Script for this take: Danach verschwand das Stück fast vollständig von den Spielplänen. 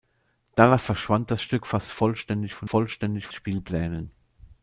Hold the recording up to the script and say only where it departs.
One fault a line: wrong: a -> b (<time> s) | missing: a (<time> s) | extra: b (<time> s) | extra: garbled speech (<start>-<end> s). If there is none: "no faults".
wrong: den -> vollständig (2.6 s)